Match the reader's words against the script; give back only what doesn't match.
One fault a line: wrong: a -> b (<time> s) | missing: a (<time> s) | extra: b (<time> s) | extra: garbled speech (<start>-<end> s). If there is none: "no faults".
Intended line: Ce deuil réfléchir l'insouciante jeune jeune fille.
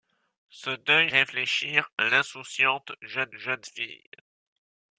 no faults